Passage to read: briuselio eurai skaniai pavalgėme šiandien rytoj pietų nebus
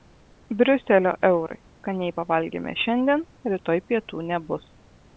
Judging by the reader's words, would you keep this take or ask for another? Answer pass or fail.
pass